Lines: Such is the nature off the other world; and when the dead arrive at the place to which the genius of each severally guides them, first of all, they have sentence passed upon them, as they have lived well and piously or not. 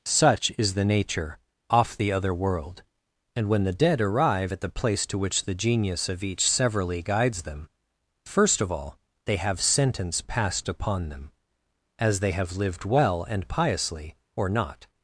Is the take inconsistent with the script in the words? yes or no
no